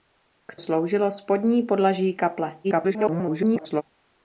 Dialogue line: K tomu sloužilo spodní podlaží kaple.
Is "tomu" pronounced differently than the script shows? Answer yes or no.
yes